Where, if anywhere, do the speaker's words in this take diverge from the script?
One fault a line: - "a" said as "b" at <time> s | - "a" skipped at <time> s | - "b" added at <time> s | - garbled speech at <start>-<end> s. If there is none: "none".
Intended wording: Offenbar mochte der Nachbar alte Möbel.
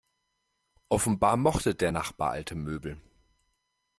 none